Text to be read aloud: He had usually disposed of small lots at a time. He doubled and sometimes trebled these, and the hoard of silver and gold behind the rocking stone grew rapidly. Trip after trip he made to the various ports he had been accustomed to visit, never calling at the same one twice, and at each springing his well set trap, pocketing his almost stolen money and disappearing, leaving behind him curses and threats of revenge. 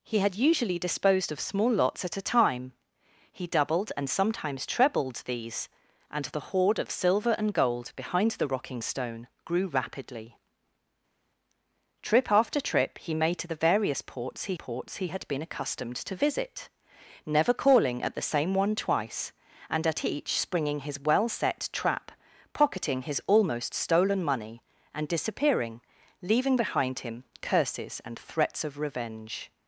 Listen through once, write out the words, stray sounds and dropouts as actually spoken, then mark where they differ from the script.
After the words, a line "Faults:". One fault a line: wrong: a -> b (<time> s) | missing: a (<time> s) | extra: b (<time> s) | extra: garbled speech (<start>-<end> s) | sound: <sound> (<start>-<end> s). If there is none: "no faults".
He had usually disposed of small lots at a time. He doubled and sometimes trebled these, and the hoard of silver and gold behind the rocking stone grew rapidly. Trip after trip he made to the various ports he ports he had been accustomed to visit, never calling at the same one twice, and at each springing his well set trap, pocketing his almost stolen money and disappearing, leaving behind him curses and threats of revenge.
Faults:
extra: ports he (14.5 s)